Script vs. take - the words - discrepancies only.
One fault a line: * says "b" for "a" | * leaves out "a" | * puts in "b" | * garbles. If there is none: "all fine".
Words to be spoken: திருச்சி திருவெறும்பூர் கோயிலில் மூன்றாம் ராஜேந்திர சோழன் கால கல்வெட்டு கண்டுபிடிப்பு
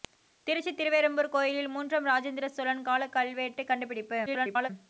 * garbles